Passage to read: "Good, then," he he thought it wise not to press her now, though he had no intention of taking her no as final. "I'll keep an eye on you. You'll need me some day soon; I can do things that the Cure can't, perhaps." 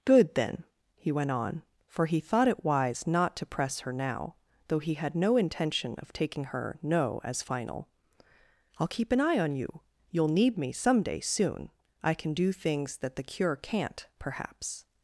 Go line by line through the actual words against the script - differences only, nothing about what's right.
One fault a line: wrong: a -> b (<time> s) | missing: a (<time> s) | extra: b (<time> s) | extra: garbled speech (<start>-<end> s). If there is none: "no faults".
extra: went on for (1.1 s)